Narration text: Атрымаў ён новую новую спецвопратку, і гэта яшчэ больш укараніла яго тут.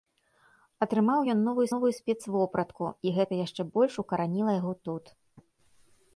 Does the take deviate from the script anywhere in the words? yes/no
no